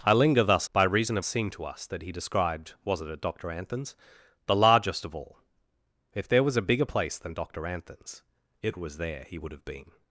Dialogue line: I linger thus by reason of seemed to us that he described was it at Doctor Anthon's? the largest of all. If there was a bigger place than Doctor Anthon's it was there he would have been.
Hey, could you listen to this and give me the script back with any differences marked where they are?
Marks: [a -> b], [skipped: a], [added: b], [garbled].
I linger thus by reason of seemed to us that he described was it at Doctor Anthon's? the largest of all. If there was a bigger place than Doctor Anthon's it was there he would have been.